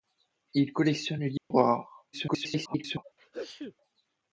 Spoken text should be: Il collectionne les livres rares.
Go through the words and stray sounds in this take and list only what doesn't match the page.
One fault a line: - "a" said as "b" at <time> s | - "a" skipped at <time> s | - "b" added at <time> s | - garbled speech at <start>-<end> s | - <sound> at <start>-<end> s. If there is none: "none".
- dropout at 1.4-1.5 s
- garbled speech at 2.1-3.0 s
- sneeze at 3.2-3.8 s